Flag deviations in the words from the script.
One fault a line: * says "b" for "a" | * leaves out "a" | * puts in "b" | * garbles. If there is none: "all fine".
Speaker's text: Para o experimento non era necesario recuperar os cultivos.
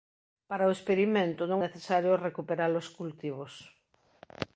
* leaves out "era"